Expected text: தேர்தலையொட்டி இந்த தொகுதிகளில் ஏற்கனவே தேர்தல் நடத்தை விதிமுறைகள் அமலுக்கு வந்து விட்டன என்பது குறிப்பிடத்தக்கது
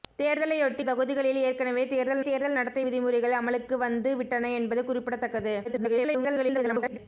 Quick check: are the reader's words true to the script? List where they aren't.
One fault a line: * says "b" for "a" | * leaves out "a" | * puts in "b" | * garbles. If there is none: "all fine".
* leaves out "இந்த"
* puts in "தேர்தல்"
* garbles